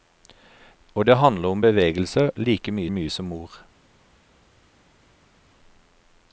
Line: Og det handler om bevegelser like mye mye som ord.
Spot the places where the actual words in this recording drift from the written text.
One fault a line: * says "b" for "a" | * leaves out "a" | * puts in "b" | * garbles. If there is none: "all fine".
all fine